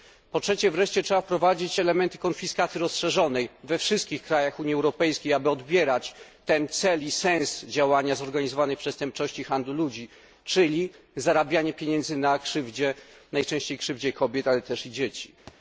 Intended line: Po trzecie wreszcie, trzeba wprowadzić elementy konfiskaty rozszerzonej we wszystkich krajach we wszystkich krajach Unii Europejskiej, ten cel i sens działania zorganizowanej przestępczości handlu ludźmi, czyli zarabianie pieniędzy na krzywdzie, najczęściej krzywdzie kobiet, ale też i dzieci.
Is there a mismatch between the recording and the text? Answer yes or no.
yes